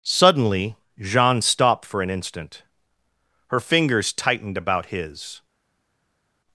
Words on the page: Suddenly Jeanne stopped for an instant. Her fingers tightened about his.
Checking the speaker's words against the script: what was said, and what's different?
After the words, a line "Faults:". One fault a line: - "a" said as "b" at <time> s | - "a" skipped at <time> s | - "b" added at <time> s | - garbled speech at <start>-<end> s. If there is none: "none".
Suddenly Jeanne stopped for an instant. Her fingers tightened about his.
Faults:
none